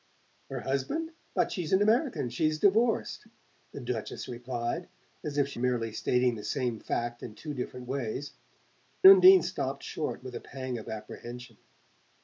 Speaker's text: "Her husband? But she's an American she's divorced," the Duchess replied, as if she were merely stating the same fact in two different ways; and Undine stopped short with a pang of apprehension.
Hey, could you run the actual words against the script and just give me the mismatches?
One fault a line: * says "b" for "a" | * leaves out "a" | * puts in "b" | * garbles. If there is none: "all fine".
* leaves out "were"
* leaves out "and"